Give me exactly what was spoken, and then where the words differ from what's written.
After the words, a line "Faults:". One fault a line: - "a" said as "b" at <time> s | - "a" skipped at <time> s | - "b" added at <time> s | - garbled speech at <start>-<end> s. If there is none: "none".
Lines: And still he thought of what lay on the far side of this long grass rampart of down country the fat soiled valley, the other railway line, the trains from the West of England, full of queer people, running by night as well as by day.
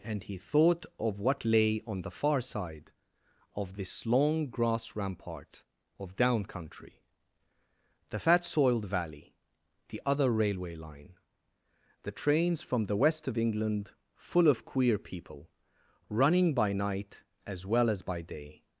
And he thought of what lay on the far side of this long grass rampart of down country the fat soiled valley, the other railway line, the trains from the West of England, full of queer people, running by night as well as by day.
Faults:
- "still" skipped at 0.2 s